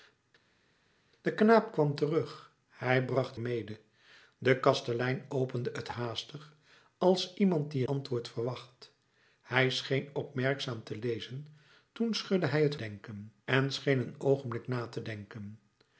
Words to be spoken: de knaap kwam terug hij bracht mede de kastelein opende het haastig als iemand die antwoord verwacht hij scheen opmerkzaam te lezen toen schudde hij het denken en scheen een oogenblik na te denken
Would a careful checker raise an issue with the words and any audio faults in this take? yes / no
no